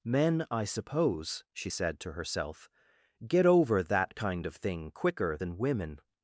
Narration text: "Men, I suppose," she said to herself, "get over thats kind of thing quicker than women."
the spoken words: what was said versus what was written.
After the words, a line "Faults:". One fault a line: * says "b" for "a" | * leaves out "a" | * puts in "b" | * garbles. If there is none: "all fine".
"Men, I suppose," she said to herself, "get over that kind of thing quicker than women."
Faults:
* says "that" for "thats"